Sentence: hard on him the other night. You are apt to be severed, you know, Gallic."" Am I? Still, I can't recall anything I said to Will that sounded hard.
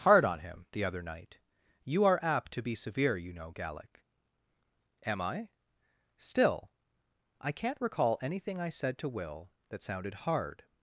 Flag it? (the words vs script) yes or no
yes